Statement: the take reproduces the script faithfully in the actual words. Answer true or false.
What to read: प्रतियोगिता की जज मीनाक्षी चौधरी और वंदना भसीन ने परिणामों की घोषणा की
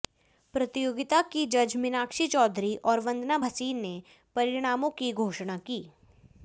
true